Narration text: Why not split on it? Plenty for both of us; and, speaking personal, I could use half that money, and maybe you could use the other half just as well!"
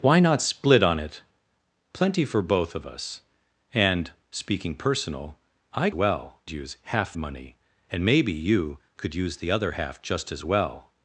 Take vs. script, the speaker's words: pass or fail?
fail